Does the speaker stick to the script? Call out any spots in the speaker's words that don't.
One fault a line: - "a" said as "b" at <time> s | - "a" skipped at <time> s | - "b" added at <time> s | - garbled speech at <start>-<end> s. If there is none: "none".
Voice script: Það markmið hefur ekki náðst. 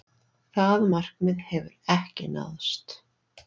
none